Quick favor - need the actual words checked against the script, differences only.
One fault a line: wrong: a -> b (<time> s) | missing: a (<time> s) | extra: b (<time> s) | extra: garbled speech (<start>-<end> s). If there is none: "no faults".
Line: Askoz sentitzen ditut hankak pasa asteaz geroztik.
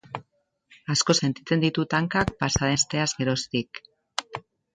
no faults